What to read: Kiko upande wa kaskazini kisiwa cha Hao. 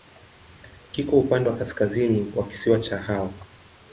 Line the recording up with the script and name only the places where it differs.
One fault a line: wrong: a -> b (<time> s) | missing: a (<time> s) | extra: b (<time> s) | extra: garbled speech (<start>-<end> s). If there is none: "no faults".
extra: wa (2.3 s)